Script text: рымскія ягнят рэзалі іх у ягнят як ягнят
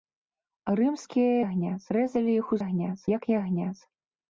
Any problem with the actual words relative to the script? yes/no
no